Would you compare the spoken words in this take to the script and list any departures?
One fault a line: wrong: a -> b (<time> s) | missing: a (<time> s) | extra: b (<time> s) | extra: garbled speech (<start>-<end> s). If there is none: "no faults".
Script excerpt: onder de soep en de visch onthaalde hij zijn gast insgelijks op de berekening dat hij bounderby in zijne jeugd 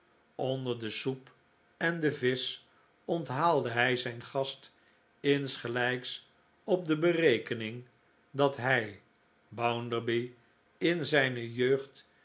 no faults